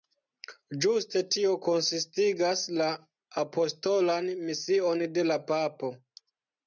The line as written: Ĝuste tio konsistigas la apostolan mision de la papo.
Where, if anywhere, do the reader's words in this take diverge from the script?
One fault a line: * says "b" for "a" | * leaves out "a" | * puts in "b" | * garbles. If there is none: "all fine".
all fine